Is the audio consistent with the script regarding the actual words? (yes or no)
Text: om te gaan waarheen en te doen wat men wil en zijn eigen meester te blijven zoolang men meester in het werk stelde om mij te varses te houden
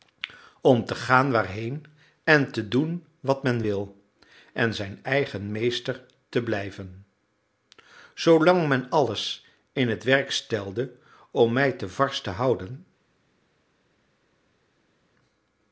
no